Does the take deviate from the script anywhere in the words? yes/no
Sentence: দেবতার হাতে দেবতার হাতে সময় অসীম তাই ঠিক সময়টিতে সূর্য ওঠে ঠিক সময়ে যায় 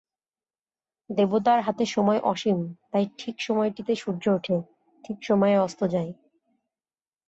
yes